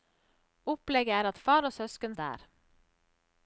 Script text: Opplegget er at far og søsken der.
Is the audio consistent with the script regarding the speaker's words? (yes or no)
yes